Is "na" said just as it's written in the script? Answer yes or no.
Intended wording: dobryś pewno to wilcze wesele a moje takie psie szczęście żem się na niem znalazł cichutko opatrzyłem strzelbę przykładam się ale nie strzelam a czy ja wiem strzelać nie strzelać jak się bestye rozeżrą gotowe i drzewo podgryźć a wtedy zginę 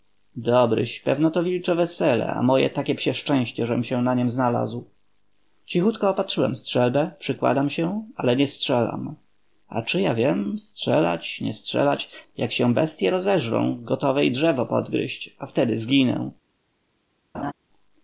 yes